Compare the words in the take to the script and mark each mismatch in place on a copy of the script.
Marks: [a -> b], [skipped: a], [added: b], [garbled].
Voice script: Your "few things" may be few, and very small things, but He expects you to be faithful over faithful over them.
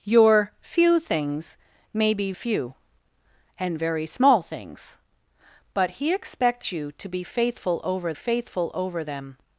Your "few things" may be few, and very small things, but He expects you to be faithful over faithful over them.